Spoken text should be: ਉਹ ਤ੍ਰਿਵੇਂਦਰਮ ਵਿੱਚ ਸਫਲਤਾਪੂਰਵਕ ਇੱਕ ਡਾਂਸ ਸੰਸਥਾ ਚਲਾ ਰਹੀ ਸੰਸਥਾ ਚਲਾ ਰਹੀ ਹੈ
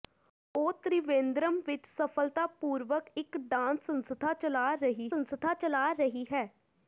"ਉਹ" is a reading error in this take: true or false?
false